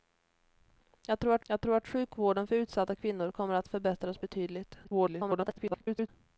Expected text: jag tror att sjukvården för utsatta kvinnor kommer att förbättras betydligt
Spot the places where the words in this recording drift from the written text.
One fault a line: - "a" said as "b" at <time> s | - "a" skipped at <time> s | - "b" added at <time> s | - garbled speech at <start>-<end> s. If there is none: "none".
- "jag tror att" added at 1.5 s
- garbled speech at 4.8-6.1 s